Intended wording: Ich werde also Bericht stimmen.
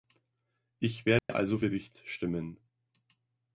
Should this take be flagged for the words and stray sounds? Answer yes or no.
yes